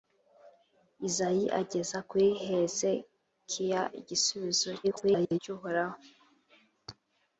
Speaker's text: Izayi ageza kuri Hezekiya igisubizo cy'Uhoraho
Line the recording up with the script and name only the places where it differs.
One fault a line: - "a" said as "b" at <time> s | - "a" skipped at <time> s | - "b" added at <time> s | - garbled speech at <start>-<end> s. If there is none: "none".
- garbled speech at 4.8-5.4 s